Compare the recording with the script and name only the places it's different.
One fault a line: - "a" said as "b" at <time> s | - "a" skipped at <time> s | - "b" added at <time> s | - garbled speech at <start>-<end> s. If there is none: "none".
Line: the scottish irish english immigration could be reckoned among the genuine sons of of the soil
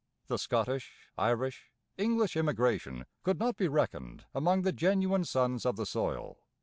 - "not" added at 3.4 s
- "of" skipped at 5.8 s